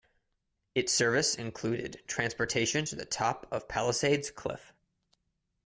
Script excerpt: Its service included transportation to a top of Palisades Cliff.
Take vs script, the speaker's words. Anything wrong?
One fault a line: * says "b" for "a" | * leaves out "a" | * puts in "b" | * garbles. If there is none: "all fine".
* says "the" for "a"